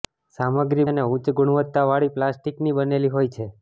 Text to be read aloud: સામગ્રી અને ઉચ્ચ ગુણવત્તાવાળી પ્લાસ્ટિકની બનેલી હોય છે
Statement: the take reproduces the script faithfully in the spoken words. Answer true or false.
true